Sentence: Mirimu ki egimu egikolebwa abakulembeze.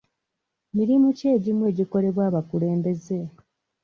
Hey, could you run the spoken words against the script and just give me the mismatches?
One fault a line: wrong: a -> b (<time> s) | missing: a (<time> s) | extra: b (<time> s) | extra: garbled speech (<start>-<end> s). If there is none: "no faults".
no faults